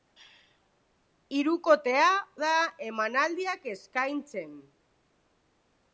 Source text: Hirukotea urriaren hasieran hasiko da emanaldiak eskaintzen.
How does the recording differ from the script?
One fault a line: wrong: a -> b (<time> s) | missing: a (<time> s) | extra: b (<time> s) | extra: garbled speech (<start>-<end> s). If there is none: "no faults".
missing: urriaren hasieran hasiko (2.1 s)